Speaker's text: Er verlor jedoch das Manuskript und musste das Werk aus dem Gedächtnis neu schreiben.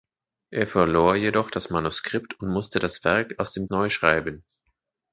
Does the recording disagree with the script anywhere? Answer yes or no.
yes